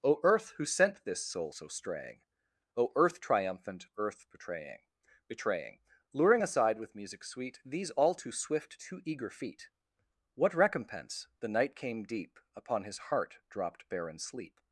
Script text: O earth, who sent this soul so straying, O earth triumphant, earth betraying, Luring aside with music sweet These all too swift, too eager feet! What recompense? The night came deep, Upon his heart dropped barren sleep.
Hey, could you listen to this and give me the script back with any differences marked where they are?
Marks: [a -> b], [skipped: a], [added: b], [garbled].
O earth, who sent this soul so straying, O earth triumphant, earth betraying, [added: betraying] Luring aside with music sweet These all too swift, too eager feet! What recompense? The night came deep, Upon his heart dropped barren sleep.